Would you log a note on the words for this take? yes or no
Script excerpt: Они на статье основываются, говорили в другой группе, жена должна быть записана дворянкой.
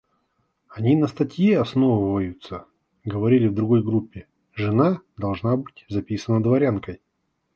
no